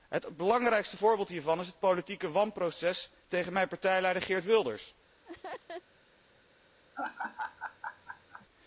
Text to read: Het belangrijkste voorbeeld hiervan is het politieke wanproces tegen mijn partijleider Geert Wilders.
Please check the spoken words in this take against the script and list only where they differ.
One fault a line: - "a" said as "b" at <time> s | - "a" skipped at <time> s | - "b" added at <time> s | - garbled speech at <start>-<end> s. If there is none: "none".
none